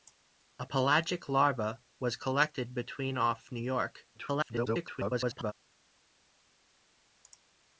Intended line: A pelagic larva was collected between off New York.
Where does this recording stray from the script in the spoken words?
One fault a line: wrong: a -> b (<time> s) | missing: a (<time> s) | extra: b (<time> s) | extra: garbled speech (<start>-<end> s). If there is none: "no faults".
extra: garbled speech (4.1-5.5 s)